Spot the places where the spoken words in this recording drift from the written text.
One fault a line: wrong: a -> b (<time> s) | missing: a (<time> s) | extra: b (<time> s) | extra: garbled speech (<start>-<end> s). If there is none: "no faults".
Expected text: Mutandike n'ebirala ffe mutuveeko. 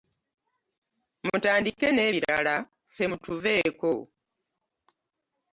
no faults